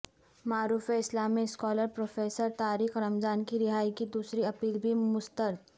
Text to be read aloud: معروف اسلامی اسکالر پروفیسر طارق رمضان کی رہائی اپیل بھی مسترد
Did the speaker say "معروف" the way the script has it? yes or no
yes